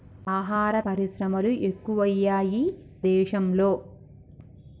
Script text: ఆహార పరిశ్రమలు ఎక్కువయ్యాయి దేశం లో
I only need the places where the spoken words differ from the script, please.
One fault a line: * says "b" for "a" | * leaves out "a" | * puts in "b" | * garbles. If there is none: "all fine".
all fine